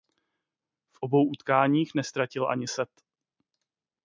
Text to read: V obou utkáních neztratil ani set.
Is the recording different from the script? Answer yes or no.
no